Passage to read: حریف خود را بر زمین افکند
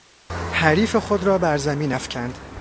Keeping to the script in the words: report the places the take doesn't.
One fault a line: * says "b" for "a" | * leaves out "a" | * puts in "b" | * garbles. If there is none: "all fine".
all fine